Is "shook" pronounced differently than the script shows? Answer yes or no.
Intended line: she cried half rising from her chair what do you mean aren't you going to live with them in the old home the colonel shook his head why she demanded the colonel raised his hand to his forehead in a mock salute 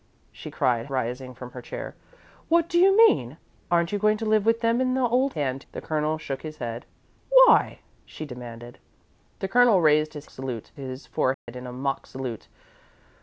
no